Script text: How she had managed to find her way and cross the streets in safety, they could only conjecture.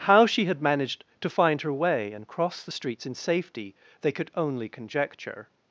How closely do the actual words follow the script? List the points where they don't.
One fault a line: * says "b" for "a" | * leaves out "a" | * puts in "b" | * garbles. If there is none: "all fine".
all fine